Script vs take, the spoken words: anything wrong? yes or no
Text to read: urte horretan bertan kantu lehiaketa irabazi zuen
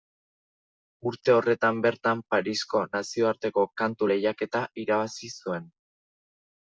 yes